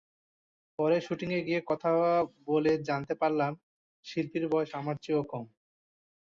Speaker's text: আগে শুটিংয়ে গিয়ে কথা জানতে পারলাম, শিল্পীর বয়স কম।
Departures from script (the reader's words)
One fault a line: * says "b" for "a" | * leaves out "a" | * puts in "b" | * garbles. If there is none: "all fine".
* says "পরে" for "আগে"
* puts in "বলে"
* puts in "আমার চেয়েও"